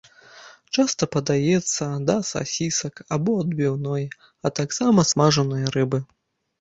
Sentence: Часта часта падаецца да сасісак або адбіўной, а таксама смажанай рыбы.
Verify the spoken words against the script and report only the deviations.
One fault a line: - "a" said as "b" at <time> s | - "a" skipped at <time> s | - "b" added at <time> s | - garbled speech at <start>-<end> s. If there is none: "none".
- "часта" skipped at 1.1 s